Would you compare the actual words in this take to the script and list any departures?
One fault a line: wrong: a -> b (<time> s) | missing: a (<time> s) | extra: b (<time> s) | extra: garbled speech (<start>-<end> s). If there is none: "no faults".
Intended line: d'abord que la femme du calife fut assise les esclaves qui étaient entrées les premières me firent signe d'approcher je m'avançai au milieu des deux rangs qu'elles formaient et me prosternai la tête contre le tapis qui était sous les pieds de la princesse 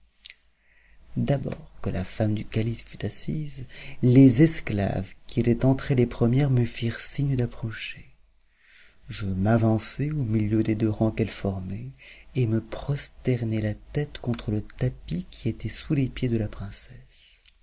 no faults